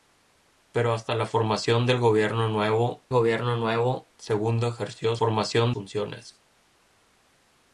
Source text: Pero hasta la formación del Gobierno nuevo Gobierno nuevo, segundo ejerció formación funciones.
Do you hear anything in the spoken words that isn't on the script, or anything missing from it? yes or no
no